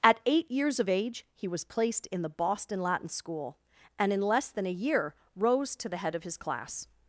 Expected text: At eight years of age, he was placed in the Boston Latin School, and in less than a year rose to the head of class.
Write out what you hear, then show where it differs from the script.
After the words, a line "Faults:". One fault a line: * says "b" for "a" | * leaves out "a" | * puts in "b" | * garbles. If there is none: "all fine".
At eight years of age, he was placed in the Boston Latin School, and in less than a year rose to the head of his class.
Faults:
* puts in "his"